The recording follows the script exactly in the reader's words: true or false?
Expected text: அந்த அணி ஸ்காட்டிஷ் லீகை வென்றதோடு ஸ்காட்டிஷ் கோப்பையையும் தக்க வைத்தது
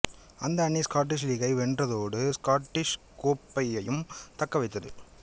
true